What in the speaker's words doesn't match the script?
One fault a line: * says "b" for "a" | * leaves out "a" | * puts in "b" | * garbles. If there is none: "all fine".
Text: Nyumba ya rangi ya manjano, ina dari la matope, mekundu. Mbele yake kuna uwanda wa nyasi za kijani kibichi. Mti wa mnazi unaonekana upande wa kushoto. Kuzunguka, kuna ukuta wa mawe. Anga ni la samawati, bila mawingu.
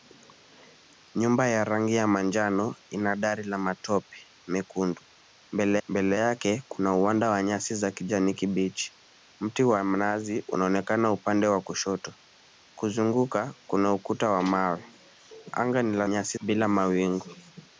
* puts in "mbele"
* says "nyasi" for "samawati"